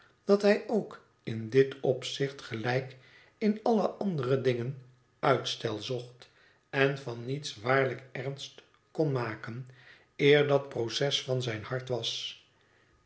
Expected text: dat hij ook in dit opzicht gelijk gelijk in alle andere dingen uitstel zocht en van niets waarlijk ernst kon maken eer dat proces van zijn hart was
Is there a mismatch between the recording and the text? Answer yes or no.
yes